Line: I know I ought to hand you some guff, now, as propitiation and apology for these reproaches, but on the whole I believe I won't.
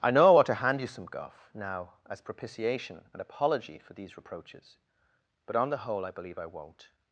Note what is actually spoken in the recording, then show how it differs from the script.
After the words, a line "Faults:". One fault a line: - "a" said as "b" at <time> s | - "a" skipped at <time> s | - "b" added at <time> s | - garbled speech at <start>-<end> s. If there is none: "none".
I know I ought to hand you some guff, now, as propitiation and apology for these reproaches, but on the whole I believe I won't.
Faults:
none